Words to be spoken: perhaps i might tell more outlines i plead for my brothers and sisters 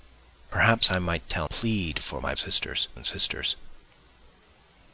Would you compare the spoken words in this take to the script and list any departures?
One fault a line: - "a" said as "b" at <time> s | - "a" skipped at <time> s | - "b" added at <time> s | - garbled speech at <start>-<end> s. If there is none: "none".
- "more outlines i" skipped at 1.5 s
- "brothers" said as "sisters" at 2.4 s